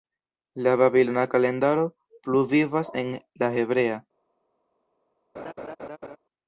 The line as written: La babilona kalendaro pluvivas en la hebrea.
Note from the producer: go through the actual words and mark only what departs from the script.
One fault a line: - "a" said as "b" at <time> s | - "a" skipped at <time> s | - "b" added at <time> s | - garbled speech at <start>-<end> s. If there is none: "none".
none